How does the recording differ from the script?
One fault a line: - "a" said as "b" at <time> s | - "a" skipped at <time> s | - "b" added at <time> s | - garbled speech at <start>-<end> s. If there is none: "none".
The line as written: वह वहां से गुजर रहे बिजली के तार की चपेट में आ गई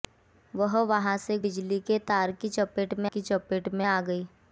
- "गुजर रहे" skipped at 1.4 s
- "की चपेट में" added at 3.1 s